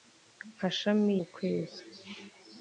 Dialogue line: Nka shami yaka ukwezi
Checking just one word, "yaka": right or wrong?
wrong